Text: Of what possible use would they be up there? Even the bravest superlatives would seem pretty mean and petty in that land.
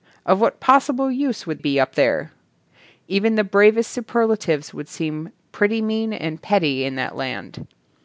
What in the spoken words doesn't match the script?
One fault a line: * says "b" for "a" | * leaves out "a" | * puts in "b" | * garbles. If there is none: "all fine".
* leaves out "they"